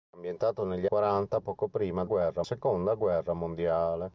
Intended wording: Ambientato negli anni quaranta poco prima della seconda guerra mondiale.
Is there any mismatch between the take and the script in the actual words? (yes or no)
yes